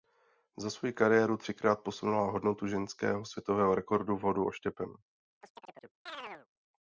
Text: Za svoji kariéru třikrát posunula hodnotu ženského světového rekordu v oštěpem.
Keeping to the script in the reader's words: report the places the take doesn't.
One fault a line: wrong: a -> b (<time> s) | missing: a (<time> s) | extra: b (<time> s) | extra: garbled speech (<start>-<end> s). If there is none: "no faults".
extra: hodu (4.2 s)